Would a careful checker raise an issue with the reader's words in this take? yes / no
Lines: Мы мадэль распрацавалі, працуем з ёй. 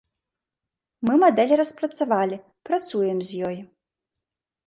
no